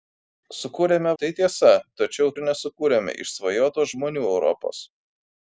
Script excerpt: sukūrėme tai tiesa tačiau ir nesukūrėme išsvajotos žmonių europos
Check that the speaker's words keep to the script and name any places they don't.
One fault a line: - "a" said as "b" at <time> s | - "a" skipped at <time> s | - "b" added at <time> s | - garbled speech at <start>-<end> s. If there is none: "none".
none